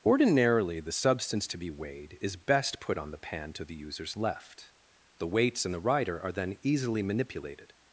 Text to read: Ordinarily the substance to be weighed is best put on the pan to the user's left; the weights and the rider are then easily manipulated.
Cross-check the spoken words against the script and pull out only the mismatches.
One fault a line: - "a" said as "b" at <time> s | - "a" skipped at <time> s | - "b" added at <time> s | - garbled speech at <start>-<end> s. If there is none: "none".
none